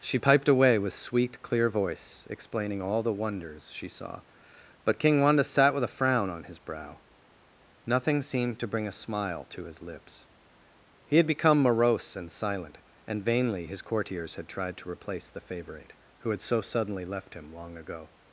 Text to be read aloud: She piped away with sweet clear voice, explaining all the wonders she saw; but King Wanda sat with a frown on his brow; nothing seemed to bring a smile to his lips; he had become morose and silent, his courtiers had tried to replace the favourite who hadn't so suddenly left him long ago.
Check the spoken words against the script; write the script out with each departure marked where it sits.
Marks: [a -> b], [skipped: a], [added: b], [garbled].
She piped away with sweet clear voice, explaining all the wonders she saw; but King Wanda sat with a frown on his brow; nothing seemed to bring a smile to his lips; he had become morose and silent, [added: and vainly] his courtiers had tried to replace the favourite who [hadn't -> had] so suddenly left him long ago.